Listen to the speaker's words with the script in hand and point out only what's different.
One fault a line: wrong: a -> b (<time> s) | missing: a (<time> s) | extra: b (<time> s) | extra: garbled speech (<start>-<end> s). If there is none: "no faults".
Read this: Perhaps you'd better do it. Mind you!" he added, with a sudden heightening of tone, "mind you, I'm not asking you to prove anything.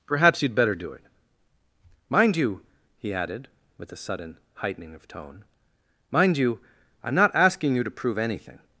no faults